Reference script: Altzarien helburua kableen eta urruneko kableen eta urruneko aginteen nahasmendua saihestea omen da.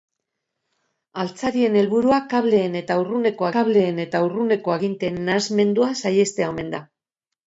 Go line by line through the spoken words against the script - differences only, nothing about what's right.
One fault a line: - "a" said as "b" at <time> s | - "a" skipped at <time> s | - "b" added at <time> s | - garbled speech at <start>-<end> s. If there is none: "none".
none